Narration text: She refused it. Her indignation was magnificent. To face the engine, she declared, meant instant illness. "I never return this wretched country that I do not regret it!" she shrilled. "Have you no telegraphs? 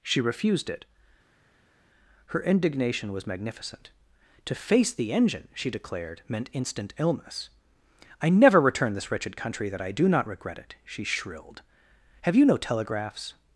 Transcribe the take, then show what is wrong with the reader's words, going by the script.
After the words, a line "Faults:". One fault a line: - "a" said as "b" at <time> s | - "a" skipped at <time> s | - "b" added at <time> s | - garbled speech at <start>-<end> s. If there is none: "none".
She refused it. Her indignation was magnificent. To face the engine, she declared, meant instant illness. "I never return this wretched country that I do not regret it!" she shrilled. "Have you no telegraphs?
Faults:
none